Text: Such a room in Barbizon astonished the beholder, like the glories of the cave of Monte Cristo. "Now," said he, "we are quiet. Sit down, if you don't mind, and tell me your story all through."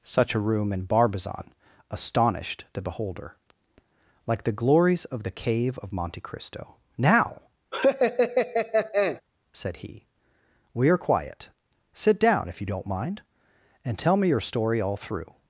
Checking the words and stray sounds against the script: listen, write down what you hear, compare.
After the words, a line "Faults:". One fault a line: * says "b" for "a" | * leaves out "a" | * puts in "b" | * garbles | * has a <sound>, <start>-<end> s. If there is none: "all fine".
Such a room in Barbizon astonished the beholder, like the glories of the cave of Monte Cristo. "Now," said he, "we are quiet. Sit down, if you don't mind, and tell me your story all through."
Faults:
* has a laugh, 7.7-9.2 s